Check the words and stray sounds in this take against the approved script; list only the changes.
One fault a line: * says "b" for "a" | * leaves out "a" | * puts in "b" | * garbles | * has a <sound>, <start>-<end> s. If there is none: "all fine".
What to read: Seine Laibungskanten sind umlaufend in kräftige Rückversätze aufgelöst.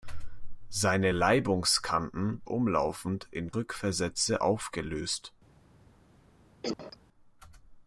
* leaves out "sind"
* leaves out "kräftige"
* has a cough, 6.6-7.0 s